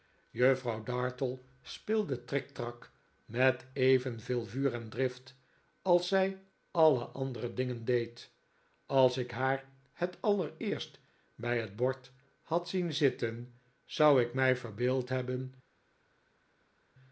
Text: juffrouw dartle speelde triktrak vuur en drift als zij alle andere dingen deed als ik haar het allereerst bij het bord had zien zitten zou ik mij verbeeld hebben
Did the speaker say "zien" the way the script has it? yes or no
yes